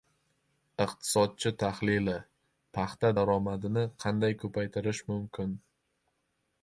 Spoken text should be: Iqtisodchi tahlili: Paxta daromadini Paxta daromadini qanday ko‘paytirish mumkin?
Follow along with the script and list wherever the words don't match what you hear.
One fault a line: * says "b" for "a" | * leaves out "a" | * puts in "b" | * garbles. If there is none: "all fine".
* leaves out "Paxta daromadini"